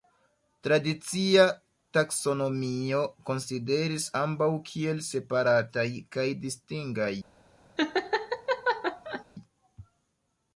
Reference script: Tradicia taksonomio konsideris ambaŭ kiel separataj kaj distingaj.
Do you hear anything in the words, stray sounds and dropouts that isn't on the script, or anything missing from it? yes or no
yes